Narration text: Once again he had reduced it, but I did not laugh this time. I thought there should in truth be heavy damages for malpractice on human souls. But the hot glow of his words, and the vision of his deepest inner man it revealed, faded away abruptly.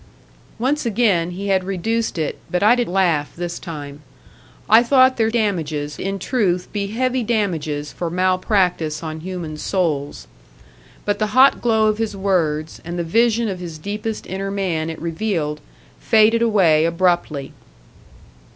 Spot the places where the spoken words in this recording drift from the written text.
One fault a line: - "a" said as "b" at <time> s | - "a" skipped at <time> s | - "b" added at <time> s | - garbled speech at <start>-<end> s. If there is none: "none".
- "not" skipped at 2.9 s
- "should" said as "damages" at 5.3 s